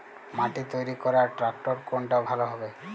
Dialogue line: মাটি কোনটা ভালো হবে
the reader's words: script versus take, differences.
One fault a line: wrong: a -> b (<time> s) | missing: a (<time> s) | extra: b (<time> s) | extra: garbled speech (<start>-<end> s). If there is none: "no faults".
extra: তৈরি করার ট্রাক্টর (0.7 s)